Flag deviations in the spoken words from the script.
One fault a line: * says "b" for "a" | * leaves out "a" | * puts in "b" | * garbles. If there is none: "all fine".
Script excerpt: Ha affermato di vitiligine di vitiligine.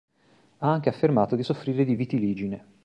* puts in "anche"
* says "soffrire" for "vitiligine"